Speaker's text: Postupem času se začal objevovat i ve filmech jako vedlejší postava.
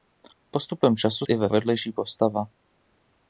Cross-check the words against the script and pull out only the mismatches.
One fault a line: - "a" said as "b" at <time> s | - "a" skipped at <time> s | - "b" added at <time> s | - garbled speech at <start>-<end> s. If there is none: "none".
- "se začal objevovat" skipped at 1.2 s
- "filmech jako" skipped at 1.5 s